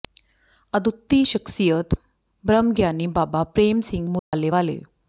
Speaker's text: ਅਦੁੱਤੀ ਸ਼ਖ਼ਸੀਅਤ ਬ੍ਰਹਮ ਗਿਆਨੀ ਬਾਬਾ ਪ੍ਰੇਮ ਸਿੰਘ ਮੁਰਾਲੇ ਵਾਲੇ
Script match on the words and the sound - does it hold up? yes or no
no